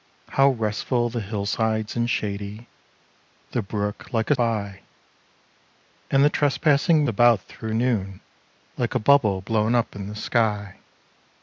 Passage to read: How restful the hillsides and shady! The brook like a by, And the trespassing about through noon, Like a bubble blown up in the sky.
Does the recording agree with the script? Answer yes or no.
yes